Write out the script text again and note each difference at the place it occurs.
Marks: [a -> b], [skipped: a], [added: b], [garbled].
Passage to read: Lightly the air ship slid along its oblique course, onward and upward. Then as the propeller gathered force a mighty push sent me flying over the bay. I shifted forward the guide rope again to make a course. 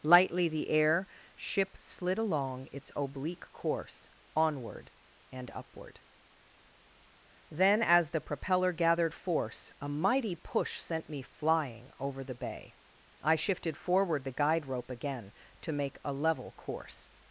Lightly the air ship slid along its oblique course, onward and upward. Then as the propeller gathered force a mighty push sent me flying over the bay. I shifted forward the guide rope again to make a [added: level] course.